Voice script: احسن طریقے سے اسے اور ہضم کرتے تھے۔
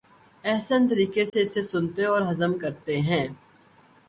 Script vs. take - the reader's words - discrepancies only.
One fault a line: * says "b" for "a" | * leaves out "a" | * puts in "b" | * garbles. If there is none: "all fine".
* puts in "سنتے"
* says "ہیں" for "تھے"